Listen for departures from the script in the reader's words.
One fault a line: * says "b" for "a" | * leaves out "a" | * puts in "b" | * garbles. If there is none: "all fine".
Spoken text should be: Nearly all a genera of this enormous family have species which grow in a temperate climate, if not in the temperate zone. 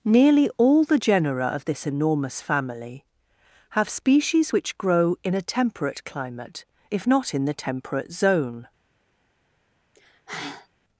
* says "the" for "a"